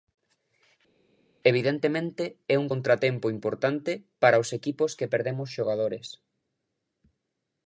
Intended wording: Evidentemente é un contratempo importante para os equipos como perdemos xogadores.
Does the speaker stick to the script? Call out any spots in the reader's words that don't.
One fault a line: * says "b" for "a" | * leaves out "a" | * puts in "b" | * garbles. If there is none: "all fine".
* says "que" for "como"